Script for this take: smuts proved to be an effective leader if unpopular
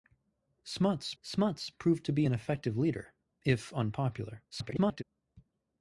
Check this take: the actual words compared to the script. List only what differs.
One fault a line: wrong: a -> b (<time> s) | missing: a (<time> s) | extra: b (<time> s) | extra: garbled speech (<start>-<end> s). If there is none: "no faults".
extra: smuts (1.2 s)
extra: garbled speech (4.5-5.0 s)